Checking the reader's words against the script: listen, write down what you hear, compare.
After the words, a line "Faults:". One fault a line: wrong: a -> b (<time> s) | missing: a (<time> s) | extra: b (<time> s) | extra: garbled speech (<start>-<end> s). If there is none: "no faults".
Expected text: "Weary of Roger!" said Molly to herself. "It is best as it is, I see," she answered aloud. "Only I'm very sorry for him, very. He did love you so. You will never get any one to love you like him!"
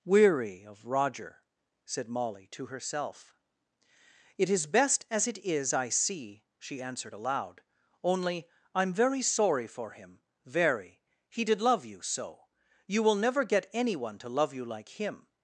"Weary of Roger!" said Molly to herself. "It is best as it is, I see," she answered aloud. "Only I'm very sorry for him, very. He did love you so. You will never get any one to love you like him!"
Faults:
no faults